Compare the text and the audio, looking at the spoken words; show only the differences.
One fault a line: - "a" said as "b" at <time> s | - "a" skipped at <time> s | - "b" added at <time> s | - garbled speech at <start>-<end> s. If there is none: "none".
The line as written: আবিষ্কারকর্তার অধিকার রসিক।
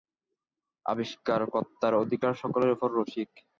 - "সকলের উপর" added at 2.3 s